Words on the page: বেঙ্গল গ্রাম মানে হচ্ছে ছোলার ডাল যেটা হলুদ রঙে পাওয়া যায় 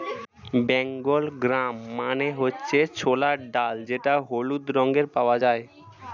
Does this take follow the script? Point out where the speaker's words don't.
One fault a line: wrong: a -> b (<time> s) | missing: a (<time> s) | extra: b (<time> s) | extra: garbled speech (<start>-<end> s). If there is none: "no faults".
no faults